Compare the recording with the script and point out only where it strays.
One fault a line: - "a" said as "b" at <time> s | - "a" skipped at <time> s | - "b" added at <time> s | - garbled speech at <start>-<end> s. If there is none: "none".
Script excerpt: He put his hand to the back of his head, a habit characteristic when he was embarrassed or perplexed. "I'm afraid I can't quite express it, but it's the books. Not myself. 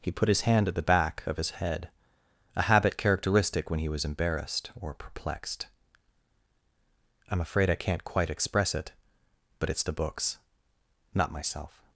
- "to" said as "at" at 0.7 s